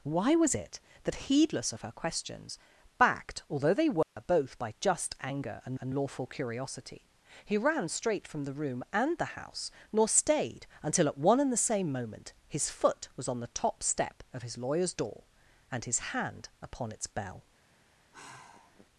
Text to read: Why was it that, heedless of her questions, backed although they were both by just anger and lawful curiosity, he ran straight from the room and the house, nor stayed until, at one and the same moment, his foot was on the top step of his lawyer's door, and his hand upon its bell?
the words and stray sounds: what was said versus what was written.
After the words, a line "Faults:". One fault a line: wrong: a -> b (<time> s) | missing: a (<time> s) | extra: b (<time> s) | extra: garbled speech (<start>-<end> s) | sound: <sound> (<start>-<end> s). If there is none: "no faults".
Why was it that, heedless of her questions, backed although they were both by just anger and and lawful curiosity, he ran straight from the room and the house, nor stayed until, at one and the same moment, his foot was on the top step of his lawyer's door, and his hand upon its bell?
Faults:
sound: dropout (4.0-4.2 s)
extra: and (5.8 s)
sound: sigh (18.1-18.9 s)